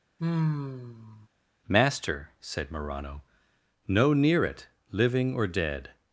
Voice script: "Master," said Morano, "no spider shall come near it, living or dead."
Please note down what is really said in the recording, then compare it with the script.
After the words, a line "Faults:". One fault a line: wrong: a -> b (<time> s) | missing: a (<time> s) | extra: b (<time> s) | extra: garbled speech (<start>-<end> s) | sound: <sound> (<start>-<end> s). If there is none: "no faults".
"Master," said Morano, "no near it, living or dead."
Faults:
sound: sigh (0.2-1.3 s)
missing: spider shall come (4.1 s)